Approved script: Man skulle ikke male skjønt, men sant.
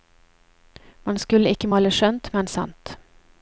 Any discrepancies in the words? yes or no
no